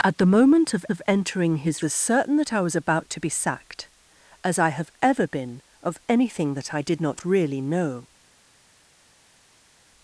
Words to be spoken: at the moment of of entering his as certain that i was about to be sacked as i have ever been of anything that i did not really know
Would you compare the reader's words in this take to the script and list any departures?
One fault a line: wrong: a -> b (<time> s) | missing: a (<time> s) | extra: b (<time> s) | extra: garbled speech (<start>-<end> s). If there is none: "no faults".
no faults